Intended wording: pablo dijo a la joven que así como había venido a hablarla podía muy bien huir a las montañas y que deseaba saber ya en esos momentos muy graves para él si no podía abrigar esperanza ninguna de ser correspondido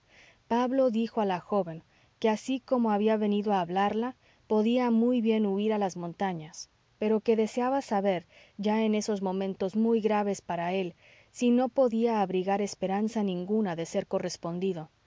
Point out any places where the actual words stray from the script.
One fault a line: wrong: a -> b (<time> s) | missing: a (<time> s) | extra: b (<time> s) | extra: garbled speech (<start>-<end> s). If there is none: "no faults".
wrong: y -> pero (7.0 s)